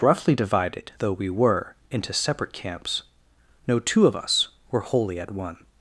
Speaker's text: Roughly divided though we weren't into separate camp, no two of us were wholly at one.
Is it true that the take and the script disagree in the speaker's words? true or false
true